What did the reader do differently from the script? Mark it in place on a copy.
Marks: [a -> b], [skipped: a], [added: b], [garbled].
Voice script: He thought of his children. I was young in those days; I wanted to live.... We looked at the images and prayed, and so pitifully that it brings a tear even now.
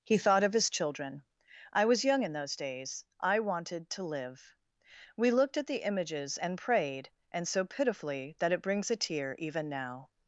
He thought of his children. I was young in those days; I wanted to live.... We looked at the images and prayed, and so pitifully that it brings a tear even now.